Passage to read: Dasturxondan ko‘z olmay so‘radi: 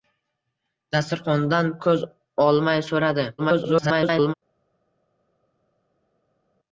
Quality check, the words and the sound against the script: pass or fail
fail